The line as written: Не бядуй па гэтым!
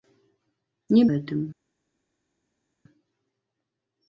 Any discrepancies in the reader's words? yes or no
yes